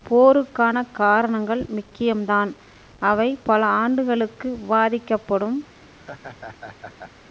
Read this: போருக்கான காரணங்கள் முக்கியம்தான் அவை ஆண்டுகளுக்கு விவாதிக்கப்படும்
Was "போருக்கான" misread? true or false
false